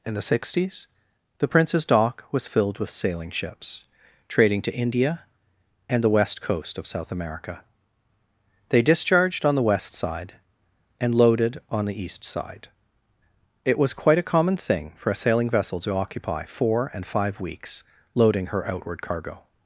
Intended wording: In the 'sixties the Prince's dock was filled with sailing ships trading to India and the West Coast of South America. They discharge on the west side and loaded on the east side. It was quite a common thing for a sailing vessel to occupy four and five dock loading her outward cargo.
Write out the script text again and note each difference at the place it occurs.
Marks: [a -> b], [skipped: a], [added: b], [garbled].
In the 'sixties the Prince's dock was filled with sailing ships trading to India and the West Coast of South America. They [discharge -> discharged] on the west side and loaded on the east side. It was quite a common thing for a sailing vessel to occupy four and five [dock -> weeks] loading her outward cargo.